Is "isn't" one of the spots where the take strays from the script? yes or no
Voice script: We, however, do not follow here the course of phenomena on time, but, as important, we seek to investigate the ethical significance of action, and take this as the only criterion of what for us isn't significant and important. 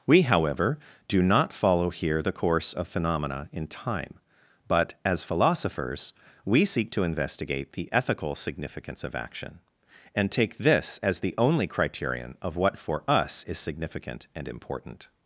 yes